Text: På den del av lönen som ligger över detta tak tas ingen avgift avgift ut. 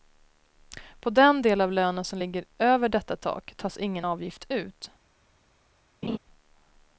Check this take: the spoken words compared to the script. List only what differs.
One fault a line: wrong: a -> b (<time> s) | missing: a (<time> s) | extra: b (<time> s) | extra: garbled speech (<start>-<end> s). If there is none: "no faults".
missing: avgift (4.5 s)